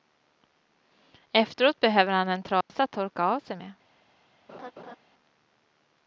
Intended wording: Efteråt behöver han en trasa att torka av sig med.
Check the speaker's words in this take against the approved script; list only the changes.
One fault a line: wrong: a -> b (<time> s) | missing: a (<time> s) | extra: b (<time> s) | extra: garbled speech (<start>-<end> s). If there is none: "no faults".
no faults